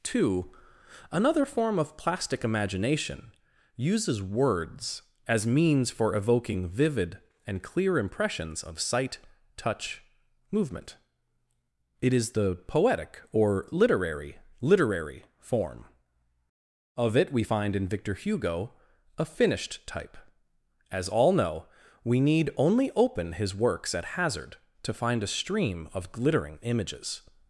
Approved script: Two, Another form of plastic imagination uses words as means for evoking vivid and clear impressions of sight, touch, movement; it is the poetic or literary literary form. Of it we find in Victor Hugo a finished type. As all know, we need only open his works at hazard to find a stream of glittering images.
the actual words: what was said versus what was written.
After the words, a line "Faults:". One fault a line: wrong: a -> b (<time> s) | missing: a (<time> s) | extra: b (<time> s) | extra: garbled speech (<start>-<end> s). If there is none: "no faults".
Two, Another form of plastic imagination uses words as means for evoking vivid and clear impressions of sight, touch, movement; it is the poetic or literary literary form. Of it we find in Victor Hugo a finished type. As all know, we need only open his works at hazard to find a stream of glittering images.
Faults:
no faults